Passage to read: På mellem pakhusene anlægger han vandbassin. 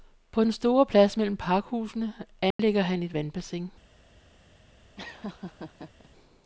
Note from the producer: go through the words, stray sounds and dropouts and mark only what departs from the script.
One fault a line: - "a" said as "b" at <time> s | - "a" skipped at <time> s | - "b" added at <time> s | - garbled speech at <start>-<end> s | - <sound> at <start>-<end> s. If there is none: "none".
- "den store plads" added at 0.4 s
- dropout at 2.5-2.6 s
- "et" added at 3.0 s
- laugh at 5.0-6.1 s